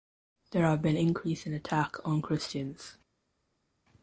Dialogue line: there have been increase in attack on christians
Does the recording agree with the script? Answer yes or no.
yes